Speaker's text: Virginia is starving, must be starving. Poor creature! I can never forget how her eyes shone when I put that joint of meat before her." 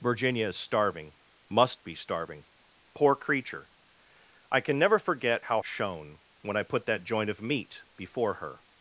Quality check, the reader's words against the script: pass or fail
fail